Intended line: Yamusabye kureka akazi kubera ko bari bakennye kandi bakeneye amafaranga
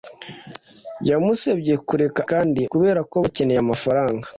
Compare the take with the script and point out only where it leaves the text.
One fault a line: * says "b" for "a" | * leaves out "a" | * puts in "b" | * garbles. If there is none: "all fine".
* says "kandi" for "akazi"
* leaves out "bari bakennye kandi"